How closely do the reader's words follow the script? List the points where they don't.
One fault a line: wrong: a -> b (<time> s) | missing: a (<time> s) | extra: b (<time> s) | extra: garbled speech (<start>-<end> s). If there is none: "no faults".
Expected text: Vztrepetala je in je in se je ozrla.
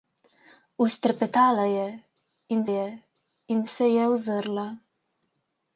no faults